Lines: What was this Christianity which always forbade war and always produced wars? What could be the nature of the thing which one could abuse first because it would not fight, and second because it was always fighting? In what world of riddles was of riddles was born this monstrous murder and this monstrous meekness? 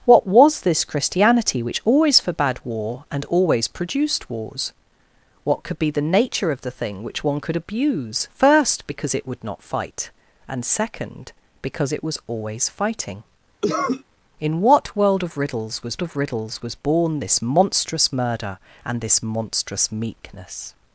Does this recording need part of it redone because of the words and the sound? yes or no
yes